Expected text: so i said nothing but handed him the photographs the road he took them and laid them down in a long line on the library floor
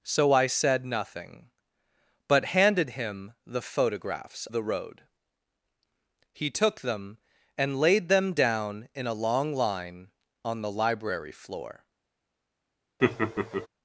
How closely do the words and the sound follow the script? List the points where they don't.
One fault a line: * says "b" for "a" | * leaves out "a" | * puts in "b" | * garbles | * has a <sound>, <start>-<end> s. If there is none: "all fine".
* has a laugh, 13.0-13.7 s